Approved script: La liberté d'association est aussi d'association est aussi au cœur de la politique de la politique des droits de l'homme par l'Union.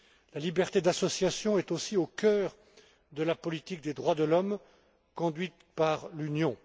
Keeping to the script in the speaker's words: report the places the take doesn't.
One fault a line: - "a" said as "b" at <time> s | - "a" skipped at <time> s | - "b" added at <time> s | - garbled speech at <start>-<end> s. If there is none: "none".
- "d'association est aussi" skipped at 2.0 s
- "de la politique" skipped at 3.8 s
- "conduite" added at 5.2 s